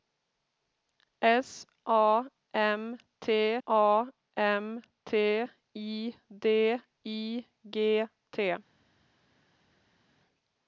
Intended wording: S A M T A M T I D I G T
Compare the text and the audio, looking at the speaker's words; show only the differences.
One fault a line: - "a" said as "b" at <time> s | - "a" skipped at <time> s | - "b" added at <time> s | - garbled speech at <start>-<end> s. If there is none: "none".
none